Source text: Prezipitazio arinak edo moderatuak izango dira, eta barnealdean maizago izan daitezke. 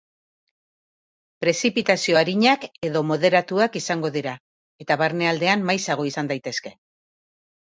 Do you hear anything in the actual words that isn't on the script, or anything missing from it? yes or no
no